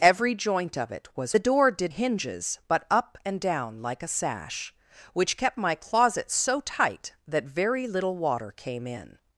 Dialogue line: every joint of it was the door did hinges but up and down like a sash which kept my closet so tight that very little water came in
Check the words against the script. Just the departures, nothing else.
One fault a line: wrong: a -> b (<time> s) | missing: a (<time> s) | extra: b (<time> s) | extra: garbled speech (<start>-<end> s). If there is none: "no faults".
no faults